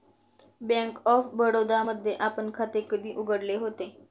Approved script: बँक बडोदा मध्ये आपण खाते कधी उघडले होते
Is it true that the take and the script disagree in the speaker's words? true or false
true